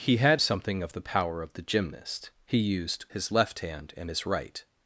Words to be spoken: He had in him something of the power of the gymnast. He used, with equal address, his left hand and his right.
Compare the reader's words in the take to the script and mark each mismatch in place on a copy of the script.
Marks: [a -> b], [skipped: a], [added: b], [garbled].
He had [skipped: in him] something of the power of the gymnast. He used, [skipped: with equal address,] his left hand and his right.